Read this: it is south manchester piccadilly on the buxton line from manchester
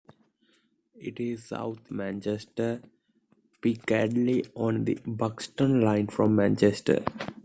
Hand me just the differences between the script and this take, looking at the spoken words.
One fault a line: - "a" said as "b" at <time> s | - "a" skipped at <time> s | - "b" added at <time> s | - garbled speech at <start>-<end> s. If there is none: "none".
none